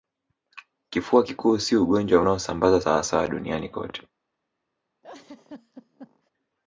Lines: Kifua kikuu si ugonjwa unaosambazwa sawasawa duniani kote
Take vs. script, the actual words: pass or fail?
pass